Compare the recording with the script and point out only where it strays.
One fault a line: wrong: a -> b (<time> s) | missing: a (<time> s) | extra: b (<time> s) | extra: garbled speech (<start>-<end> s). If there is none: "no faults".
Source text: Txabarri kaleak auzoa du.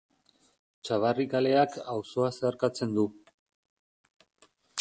extra: zeharkatzen (2.4 s)